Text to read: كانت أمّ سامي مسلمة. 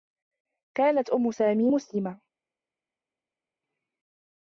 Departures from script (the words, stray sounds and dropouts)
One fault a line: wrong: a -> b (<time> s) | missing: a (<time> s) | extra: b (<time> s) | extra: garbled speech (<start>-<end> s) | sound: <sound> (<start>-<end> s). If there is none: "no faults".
no faults